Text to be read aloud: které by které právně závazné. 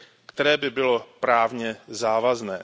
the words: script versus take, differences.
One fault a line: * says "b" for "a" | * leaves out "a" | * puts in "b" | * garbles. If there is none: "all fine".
* says "bylo" for "které"